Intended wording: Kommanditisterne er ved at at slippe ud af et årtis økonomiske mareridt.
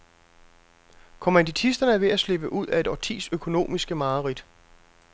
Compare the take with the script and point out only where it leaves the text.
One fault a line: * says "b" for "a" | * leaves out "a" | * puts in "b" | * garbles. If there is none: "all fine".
* leaves out "at"